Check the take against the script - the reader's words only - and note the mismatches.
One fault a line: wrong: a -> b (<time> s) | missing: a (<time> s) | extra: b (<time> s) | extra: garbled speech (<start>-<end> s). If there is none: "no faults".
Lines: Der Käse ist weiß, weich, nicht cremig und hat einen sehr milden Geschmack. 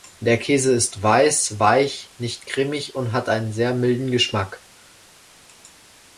no faults